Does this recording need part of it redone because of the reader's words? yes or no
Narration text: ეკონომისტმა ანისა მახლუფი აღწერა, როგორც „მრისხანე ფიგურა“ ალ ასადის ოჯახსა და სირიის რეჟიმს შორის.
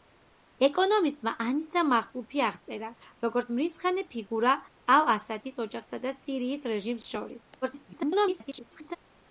yes